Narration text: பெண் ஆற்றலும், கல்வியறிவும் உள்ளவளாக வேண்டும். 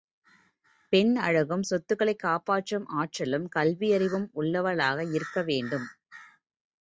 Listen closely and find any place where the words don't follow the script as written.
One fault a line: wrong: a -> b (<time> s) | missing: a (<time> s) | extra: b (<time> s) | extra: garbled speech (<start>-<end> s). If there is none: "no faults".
extra: அழகும் சொத்துக்களைக் காப்பாற்றும் (1.2 s)
extra: இருக்க (5.1 s)